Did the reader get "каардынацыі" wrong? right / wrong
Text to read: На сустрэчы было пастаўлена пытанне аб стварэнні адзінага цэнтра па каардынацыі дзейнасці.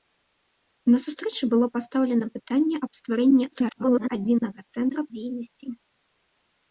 wrong